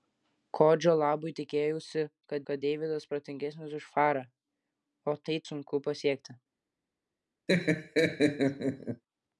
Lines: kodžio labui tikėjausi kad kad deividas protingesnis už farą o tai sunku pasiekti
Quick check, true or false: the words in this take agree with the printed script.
true